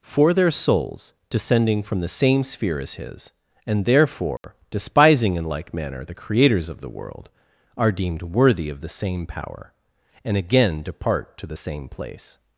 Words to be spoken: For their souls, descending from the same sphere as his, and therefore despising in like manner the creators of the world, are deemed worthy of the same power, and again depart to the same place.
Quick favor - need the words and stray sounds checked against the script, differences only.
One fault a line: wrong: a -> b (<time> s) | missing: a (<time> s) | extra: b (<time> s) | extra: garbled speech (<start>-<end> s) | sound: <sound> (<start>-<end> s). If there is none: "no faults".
sound: dropout (4.4-4.4 s)